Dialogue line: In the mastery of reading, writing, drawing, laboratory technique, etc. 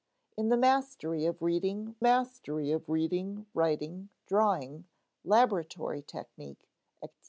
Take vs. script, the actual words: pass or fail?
fail